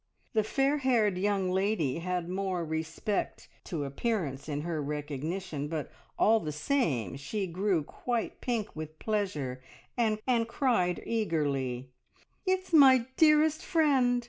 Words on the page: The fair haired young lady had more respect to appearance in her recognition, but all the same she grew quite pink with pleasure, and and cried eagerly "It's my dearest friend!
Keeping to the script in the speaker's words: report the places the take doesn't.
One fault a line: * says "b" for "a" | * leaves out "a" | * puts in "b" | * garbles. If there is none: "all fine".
all fine